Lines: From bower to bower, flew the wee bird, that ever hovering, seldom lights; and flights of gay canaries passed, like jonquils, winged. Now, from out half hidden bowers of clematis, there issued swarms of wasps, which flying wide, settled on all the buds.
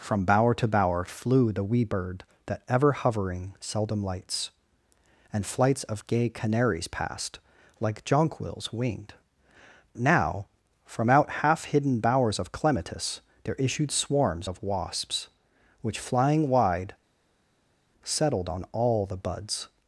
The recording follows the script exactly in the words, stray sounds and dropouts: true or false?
true